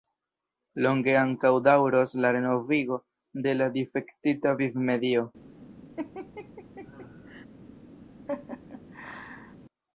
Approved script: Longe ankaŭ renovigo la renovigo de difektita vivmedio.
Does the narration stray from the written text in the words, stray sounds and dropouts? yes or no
yes